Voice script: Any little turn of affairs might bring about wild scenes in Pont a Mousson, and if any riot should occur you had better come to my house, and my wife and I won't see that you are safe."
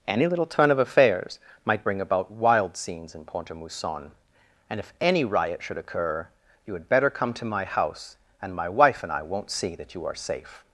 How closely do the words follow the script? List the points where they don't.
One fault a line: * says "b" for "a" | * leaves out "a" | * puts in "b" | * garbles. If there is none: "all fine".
all fine